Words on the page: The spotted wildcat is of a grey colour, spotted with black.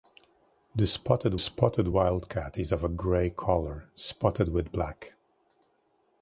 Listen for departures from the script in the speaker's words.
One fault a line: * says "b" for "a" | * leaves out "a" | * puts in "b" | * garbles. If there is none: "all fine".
* puts in "spotted"